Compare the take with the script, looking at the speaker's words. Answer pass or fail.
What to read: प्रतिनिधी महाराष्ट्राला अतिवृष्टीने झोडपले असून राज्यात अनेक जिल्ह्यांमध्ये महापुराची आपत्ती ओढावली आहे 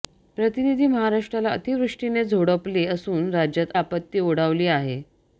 fail